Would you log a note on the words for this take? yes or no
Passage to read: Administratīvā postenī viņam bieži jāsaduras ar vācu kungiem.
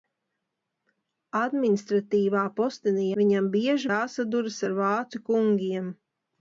no